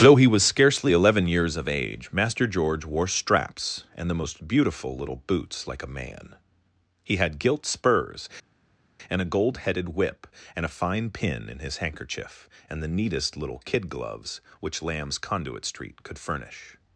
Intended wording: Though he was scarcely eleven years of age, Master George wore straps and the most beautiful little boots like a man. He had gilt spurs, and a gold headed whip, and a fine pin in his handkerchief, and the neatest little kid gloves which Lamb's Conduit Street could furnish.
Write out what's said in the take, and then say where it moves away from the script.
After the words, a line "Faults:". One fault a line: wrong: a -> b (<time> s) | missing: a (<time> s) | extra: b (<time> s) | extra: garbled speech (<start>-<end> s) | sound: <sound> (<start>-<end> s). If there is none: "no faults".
Though he was scarcely eleven years of age, Master George wore straps and the most beautiful little boots like a man. He had gilt spurs, and a gold headed whip, and a fine pin in his handkerchief, and the neatest little kid gloves which Lamb's Conduit Street could furnish.
Faults:
no faults